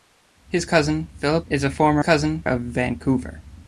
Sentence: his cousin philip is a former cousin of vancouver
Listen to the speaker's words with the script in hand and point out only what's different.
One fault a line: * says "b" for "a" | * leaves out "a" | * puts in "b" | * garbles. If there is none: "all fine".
all fine